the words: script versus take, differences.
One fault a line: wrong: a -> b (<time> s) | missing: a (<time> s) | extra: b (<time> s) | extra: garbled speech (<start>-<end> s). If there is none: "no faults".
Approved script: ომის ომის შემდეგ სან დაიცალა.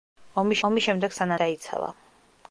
no faults